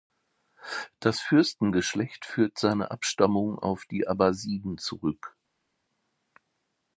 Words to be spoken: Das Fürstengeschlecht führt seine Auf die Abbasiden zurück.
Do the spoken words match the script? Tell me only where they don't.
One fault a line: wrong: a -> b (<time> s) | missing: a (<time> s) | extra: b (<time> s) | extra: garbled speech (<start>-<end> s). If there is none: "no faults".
extra: Abstammung (2.9 s)